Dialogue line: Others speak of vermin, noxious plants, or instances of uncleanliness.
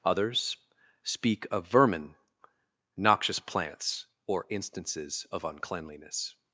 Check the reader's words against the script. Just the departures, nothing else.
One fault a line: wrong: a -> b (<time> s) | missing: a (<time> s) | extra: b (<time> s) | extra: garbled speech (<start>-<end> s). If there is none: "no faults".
no faults